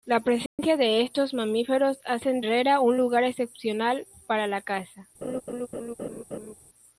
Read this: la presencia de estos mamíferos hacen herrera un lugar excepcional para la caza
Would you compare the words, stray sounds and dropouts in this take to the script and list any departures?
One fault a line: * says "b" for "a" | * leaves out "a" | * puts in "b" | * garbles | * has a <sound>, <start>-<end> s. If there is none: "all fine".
* has a dropout, 0.5-0.6 s
* has a laugh, 5.2-6.5 s